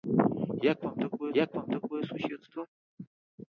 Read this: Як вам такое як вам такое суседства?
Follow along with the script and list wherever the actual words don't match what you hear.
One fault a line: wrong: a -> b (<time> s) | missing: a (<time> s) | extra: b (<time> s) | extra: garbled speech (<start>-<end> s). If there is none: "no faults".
no faults